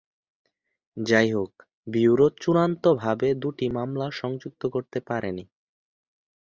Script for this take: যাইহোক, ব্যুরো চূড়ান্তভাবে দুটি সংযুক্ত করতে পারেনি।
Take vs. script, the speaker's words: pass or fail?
fail